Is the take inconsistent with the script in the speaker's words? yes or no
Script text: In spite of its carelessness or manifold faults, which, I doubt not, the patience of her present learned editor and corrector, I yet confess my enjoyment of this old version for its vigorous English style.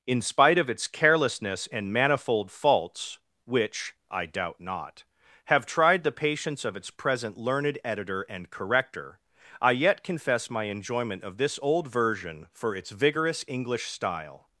yes